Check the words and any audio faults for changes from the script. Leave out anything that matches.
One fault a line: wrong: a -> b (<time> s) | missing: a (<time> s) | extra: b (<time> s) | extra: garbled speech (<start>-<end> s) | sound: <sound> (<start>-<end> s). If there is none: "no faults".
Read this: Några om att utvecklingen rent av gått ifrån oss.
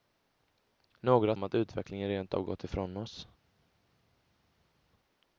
no faults